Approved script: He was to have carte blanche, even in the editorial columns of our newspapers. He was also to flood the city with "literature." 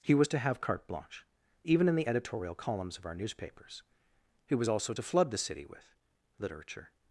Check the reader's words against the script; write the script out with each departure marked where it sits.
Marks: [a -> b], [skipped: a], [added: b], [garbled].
He was to have carte blanche, even in the editorial columns of our newspapers. He was also to flood the city with "literature."